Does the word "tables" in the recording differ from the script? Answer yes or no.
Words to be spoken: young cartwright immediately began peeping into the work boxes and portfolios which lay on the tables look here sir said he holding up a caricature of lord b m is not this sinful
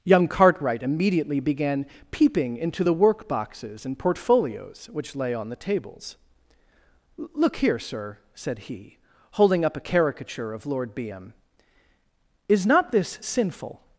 no